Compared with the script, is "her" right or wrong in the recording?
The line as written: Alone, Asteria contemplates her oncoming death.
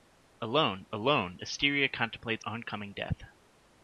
wrong